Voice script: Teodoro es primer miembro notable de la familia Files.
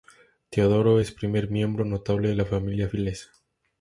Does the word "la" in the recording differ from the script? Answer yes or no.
no